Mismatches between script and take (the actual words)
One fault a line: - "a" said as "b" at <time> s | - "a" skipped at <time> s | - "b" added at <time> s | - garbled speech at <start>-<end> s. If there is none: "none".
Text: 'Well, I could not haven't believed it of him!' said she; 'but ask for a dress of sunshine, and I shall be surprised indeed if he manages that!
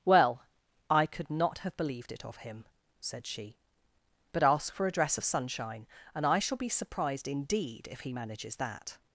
- "haven't" said as "have" at 1.6 s